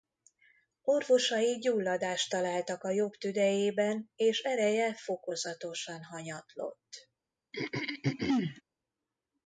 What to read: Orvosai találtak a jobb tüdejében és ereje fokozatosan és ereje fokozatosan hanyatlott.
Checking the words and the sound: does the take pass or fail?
fail